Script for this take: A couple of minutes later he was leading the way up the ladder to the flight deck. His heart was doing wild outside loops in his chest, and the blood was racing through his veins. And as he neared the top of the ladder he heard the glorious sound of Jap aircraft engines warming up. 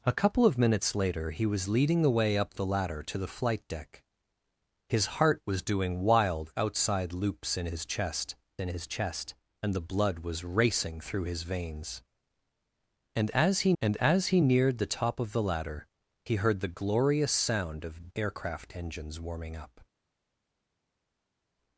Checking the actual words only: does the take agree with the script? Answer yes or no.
no